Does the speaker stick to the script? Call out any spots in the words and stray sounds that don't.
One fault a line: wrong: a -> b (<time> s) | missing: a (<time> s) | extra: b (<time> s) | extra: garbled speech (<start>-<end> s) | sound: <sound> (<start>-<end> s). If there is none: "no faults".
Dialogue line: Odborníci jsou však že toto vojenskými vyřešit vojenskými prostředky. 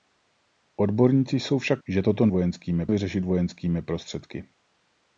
no faults